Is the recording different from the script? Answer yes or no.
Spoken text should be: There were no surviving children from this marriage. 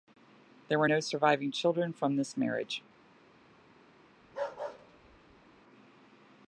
no